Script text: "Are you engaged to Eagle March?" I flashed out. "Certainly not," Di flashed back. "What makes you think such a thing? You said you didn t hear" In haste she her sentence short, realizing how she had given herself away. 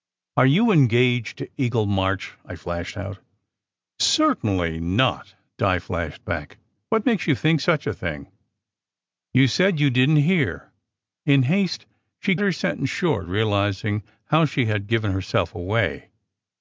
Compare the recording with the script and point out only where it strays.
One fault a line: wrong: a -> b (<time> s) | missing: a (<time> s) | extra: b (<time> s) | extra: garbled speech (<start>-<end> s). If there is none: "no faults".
no faults